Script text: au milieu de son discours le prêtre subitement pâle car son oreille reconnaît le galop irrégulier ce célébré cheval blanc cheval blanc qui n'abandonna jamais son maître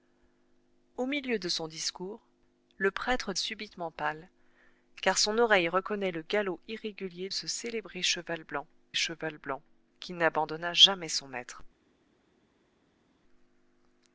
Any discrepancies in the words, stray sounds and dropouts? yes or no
no